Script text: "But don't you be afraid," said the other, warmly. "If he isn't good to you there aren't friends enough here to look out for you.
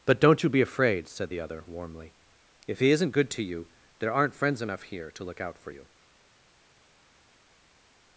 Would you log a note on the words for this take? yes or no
no